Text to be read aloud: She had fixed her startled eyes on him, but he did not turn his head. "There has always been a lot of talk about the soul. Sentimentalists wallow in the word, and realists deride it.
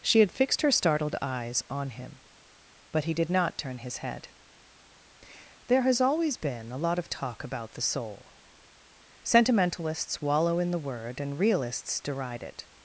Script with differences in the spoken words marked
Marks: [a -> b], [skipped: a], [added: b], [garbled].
She had fixed her startled eyes on him, but he did not turn his head. "There has always been a lot of talk about the soul. Sentimentalists wallow in the word, and realists deride it.